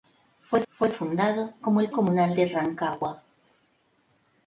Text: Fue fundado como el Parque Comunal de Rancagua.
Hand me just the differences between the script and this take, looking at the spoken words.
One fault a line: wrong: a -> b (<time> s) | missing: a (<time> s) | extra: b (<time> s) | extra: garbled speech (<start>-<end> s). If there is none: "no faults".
extra: fue (0.7 s)
missing: Parque (1.9 s)